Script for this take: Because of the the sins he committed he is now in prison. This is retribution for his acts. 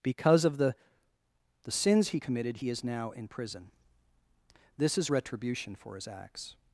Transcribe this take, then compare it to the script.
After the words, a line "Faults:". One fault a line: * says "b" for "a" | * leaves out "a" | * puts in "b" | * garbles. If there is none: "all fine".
Because of the the sins he committed he is now in prison. This is retribution for his acts.
Faults:
all fine